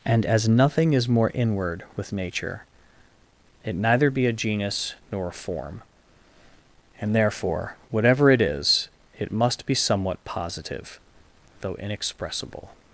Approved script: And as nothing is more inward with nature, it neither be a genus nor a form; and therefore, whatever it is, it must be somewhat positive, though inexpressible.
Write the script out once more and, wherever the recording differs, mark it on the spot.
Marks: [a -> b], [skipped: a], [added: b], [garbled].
And as nothing is more inward with nature, it neither be a genus nor a form; and therefore, whatever it is, it must be somewhat positive, though inexpressible.